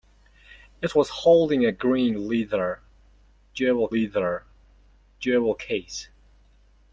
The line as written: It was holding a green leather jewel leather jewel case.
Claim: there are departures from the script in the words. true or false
false